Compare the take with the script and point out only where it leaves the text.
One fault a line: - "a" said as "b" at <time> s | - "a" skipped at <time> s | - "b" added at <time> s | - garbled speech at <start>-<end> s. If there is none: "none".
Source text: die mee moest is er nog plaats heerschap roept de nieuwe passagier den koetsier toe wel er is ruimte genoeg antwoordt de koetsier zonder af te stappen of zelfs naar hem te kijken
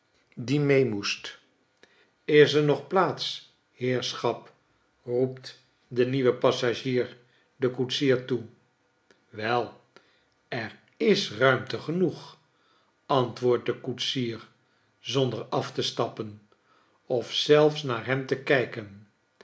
none